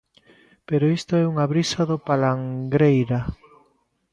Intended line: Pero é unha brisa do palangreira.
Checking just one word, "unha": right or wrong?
right